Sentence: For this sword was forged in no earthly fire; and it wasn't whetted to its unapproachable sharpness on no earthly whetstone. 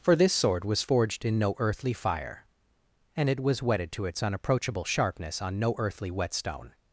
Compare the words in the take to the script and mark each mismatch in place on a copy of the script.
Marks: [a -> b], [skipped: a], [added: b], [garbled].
For this sword was forged in no earthly fire; and it [wasn't -> was] whetted to its unapproachable sharpness on no earthly whetstone.